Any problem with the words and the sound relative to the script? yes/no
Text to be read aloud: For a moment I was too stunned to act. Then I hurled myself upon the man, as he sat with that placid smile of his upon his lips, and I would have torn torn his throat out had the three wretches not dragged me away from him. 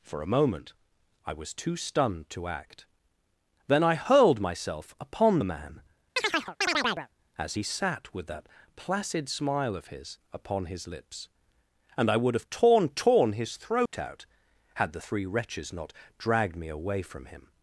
yes